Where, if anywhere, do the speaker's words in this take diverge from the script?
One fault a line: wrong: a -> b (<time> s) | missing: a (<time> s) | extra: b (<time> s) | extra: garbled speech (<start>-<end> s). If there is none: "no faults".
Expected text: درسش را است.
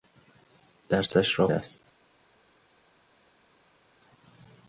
no faults